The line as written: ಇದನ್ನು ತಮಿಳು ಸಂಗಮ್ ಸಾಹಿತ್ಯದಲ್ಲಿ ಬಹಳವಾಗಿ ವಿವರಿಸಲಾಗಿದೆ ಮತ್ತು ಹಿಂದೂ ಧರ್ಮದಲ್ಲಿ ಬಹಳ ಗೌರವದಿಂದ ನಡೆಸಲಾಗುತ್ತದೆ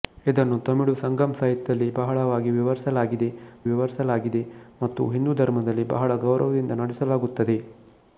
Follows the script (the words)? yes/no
no